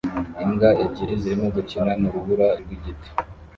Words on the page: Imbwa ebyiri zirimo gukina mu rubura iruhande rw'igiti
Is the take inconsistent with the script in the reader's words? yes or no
yes